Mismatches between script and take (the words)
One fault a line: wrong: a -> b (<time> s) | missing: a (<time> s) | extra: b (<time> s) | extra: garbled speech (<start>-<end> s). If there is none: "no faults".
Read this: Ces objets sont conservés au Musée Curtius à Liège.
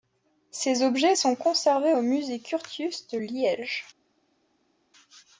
wrong: à -> de (3.1 s)